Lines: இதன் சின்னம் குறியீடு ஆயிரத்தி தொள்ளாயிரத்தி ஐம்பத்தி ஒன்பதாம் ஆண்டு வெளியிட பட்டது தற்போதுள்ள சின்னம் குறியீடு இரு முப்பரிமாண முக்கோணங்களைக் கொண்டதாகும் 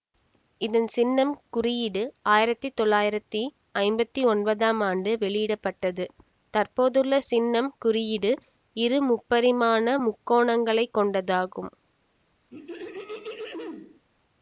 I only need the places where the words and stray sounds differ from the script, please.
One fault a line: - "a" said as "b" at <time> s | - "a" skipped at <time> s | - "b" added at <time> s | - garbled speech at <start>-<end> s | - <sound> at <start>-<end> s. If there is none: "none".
- throat clearing at 12.5-14.0 s